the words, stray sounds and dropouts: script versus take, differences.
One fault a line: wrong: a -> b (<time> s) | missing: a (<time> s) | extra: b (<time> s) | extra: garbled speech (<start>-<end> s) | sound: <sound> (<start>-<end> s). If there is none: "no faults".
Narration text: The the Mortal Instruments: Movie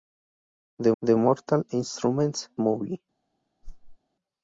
sound: whoosh (3.6-4.0 s)